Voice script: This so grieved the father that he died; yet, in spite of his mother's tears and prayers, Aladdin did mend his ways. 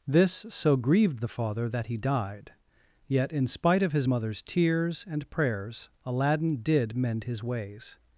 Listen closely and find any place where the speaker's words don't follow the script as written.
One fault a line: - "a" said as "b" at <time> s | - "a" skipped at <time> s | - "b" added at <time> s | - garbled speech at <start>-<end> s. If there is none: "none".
none